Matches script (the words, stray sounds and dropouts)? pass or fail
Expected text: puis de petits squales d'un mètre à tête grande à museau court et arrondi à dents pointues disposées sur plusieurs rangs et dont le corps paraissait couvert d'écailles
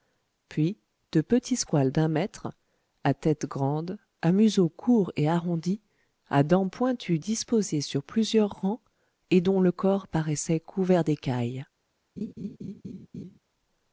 fail